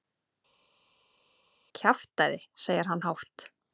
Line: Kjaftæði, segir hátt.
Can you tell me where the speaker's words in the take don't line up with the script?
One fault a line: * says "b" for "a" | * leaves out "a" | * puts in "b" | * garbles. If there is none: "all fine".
* puts in "hann"